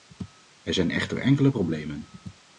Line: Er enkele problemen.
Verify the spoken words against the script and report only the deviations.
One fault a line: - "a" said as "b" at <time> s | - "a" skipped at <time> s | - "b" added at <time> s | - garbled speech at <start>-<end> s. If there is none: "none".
- "zijn echter" added at 0.7 s